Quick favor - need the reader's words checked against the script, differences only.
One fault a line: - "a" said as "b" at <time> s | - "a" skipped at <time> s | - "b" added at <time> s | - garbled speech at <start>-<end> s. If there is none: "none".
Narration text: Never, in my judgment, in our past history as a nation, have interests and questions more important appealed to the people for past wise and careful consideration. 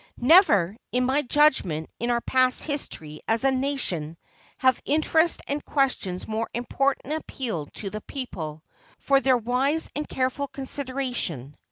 - "past" said as "their" at 9.2 s